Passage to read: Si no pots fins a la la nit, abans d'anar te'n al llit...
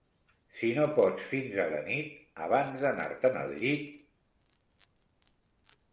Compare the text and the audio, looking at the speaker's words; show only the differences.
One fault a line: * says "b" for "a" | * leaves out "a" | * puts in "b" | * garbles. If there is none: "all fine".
* leaves out "la"